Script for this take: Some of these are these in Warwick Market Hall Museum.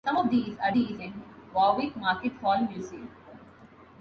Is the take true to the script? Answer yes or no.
yes